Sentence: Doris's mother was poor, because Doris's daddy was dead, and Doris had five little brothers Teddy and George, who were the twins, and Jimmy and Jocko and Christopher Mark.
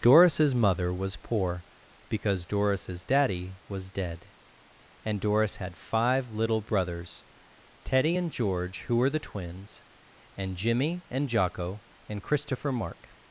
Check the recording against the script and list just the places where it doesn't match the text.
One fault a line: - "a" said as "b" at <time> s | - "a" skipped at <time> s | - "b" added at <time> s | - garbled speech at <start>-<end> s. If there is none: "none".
none